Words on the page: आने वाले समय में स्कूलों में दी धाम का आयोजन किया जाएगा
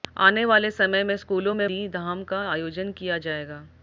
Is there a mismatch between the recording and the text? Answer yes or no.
no